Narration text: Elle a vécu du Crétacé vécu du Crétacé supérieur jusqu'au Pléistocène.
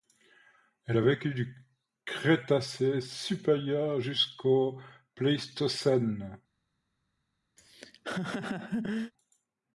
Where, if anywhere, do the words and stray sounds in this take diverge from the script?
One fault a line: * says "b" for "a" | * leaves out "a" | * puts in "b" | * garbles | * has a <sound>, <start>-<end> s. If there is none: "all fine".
* leaves out "vécu du Crétacé"
* has a laugh, 7.6-9.1 s